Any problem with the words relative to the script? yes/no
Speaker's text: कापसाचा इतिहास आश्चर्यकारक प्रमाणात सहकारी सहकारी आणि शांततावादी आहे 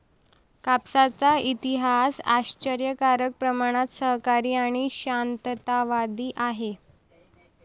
yes